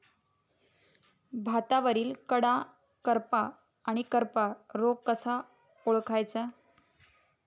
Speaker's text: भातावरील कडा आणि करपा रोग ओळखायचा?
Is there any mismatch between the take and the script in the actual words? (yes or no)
yes